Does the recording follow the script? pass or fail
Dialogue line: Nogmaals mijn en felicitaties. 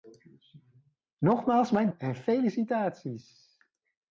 pass